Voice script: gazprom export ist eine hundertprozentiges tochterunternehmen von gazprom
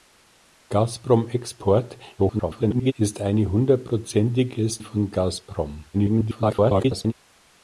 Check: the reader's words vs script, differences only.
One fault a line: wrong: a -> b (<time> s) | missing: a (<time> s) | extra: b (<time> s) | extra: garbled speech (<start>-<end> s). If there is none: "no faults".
extra: garbled speech (2.2-2.9 s)
missing: tochterunternehmen (4.8 s)
extra: garbled speech (5.9-7.1 s)